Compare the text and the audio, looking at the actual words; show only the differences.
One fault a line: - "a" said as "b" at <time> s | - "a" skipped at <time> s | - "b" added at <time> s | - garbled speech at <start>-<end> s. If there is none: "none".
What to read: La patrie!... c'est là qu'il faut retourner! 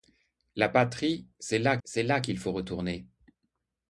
- "c'est là" added at 1.8 s